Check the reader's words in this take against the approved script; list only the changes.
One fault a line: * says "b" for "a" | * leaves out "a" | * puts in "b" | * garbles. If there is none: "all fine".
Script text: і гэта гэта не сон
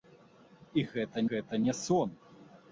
all fine